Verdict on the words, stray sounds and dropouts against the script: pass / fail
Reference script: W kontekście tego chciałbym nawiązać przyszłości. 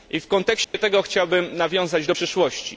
fail